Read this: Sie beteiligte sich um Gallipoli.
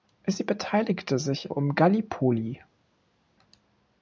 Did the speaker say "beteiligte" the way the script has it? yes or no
yes